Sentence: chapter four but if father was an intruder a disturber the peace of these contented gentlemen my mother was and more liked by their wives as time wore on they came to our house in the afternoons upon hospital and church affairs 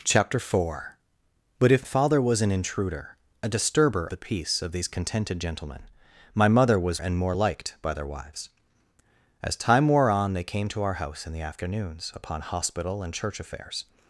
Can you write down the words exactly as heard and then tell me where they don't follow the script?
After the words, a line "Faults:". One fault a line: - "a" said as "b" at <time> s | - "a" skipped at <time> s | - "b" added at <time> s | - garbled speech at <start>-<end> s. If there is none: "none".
chapter four but if father was an intruder a disturber the peace of these contented gentlemen my mother was and more liked by their wives as time wore on they came to our house in the afternoons upon hospital and church affairs
Faults:
none